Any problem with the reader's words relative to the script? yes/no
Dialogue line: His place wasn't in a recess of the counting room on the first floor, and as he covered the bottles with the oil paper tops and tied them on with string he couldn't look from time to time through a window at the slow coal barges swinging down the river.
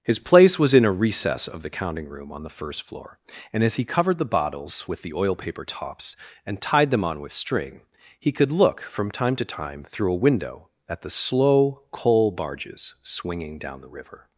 yes